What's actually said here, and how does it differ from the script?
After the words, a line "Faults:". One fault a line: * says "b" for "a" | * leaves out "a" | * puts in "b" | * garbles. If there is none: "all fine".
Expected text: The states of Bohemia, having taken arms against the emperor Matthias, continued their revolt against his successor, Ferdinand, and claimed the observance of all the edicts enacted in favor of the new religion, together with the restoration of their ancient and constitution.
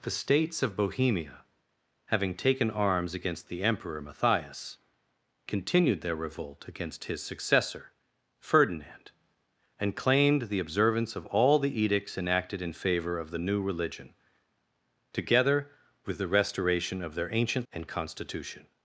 The states of Bohemia, having taken arms against the emperor Matthias, continued their revolt against his successor, Ferdinand, and claimed the observance of all the edicts enacted in favor of the new religion, together with the restoration of their ancient and constitution.
Faults:
all fine